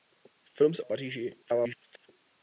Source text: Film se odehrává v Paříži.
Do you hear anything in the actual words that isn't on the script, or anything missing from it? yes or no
yes